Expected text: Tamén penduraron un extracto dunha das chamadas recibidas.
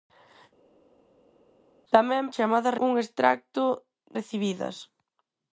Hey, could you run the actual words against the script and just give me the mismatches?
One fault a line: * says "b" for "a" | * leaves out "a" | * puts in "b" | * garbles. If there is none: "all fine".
* says "chamadas" for "penduraron"
* leaves out "dunha das chamadas"